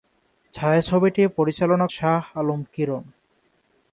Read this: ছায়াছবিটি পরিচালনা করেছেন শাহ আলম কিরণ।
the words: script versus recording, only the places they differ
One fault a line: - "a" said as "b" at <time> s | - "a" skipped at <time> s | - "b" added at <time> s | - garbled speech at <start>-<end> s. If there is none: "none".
- "করেছেন" skipped at 1.9 s